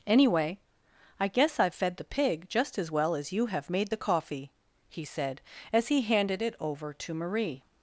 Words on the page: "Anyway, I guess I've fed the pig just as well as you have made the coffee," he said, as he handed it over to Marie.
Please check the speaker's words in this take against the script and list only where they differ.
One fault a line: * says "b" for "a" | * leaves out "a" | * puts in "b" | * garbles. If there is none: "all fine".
all fine